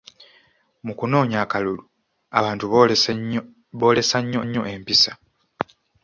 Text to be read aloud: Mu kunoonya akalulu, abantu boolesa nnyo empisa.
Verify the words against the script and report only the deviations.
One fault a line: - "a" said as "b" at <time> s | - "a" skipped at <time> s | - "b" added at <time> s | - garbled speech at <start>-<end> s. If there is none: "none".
- "nnyo" added at 4.4 s